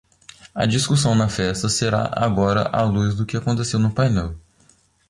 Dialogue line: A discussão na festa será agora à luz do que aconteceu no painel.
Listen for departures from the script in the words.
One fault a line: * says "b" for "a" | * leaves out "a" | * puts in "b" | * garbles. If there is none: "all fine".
all fine